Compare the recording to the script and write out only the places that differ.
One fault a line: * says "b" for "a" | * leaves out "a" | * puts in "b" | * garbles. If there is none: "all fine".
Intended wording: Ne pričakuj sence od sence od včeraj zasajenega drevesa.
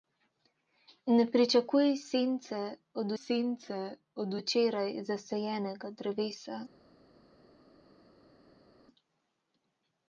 all fine